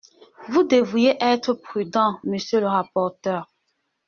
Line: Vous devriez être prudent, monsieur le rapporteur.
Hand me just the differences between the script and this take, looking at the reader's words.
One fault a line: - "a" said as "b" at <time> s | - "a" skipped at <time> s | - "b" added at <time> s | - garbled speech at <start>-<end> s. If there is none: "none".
none